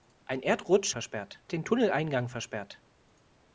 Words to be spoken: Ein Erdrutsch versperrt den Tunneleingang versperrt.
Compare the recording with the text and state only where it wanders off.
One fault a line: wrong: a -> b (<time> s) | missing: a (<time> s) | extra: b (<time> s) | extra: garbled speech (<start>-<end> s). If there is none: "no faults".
no faults